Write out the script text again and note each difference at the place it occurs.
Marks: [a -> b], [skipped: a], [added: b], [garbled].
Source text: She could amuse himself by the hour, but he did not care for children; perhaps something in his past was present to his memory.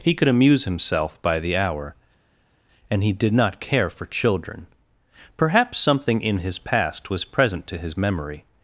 [She -> He] could amuse himself by the hour, [but -> and] he did not care for children; perhaps something in his past was present to his memory.